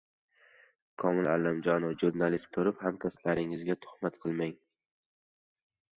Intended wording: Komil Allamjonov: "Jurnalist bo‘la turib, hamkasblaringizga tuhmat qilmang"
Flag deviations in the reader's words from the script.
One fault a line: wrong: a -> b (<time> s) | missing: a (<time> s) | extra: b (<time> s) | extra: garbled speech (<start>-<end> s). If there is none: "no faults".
missing: bo‘la (2.5 s)